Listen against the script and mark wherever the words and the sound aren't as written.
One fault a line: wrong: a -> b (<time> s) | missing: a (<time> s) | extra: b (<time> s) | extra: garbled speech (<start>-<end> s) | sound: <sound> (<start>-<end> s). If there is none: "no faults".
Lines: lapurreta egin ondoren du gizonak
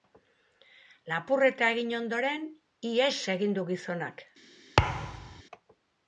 extra: ihes egin (3.0 s)
sound: thud (4.8-5.4 s)